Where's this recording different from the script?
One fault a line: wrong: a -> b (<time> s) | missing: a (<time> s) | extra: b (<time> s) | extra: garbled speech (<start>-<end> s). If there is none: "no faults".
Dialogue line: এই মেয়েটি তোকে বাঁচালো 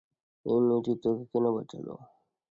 extra: কেন (1.3 s)